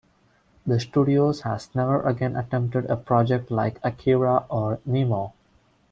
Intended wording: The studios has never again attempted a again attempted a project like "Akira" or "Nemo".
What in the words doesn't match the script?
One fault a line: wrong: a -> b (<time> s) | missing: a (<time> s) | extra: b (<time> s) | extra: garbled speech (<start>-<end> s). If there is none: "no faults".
missing: again attempted a (3.0 s)